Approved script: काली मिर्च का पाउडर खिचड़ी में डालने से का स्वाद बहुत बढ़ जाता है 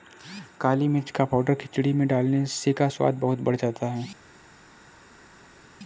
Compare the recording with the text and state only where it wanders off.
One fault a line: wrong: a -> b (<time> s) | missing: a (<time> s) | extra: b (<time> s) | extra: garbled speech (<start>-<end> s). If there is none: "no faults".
no faults